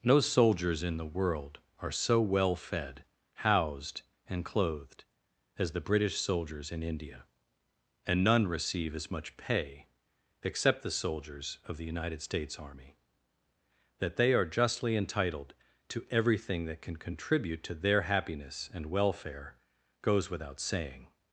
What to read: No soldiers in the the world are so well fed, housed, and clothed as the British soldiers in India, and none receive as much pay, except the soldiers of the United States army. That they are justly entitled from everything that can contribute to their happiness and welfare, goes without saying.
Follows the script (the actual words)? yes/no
no